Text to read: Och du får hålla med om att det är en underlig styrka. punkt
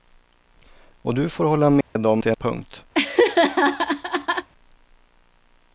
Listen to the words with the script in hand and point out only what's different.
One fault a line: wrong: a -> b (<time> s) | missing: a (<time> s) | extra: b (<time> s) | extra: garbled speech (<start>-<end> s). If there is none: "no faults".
missing: att (2.2 s)
missing: en underlig styrka (2.3 s)